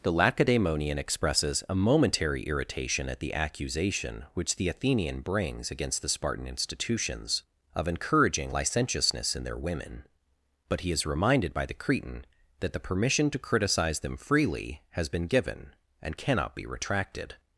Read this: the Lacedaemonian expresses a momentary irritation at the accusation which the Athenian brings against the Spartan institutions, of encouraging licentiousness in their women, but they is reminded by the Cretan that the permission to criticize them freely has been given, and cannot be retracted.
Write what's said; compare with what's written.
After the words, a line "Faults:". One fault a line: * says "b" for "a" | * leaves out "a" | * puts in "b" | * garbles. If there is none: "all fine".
the Lacedaemonian expresses a momentary irritation at the accusation which the Athenian brings against the Spartan institutions, of encouraging licentiousness in their women, but he is reminded by the Cretan that the permission to criticize them freely has been given, and cannot be retracted.
Faults:
* says "he" for "they"